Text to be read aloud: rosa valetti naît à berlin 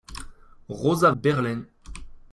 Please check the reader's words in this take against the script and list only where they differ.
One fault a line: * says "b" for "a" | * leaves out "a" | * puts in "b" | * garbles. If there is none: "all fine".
* leaves out "valetti naît à"